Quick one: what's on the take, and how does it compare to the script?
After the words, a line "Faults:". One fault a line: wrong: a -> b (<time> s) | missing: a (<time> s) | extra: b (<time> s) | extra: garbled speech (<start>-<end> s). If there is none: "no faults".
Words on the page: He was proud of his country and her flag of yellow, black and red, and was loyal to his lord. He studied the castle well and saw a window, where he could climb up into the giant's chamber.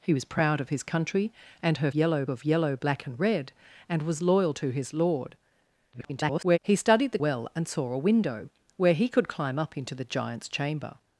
He was proud of his country and her yellow of yellow, black and red, and was loyal to his lord. [garbled] He studied the well and saw a window, where he could climb up into the giant's chamber.
Faults:
wrong: flag -> yellow (1.9 s)
extra: garbled speech (5.9-6.6 s)
missing: castle (7.2 s)